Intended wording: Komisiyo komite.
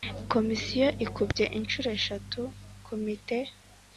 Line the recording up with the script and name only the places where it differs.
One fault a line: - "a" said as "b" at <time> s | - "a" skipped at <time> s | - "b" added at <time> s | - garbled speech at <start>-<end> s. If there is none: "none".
- "ikubye inshuro eshatu" added at 1.1 s